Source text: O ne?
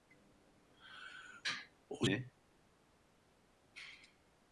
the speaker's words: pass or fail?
pass